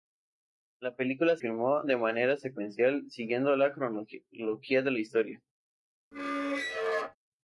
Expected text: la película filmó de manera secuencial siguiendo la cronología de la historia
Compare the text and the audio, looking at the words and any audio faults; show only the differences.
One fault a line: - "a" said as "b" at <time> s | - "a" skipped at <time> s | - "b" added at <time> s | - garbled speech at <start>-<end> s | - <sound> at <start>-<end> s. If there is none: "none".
- squeak at 6.1-7.2 s